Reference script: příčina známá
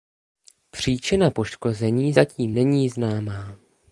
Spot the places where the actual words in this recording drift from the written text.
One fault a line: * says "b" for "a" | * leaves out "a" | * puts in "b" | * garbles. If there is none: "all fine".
* puts in "poškození zatím není"